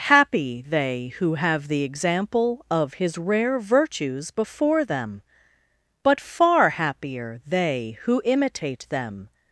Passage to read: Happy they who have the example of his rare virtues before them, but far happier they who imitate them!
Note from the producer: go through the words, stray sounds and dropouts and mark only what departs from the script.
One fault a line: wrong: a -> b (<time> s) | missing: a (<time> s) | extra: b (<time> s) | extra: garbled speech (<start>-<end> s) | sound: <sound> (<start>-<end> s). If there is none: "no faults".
no faults